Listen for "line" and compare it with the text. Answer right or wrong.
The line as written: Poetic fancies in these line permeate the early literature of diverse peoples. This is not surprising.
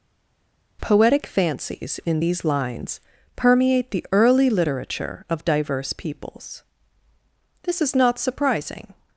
wrong